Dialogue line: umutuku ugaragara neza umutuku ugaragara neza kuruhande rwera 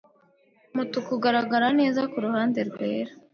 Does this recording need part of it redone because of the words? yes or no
yes